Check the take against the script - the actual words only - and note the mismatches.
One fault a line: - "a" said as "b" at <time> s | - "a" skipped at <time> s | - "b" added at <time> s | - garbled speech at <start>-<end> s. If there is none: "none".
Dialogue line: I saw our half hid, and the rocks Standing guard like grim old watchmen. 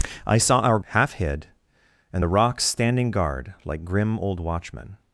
none